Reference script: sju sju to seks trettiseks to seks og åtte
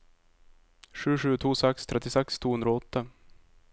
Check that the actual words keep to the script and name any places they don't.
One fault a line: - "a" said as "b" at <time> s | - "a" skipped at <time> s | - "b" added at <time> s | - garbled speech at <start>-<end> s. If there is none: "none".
- "seks" said as "hundre" at 2.5 s